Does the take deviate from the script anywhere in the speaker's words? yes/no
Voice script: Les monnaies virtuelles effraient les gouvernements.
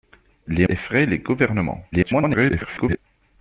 yes